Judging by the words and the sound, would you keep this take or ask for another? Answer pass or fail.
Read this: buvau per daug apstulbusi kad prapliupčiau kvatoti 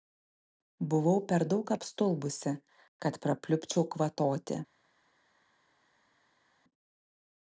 pass